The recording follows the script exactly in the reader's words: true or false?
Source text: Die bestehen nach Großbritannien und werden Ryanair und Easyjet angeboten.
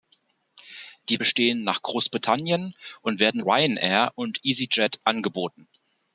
true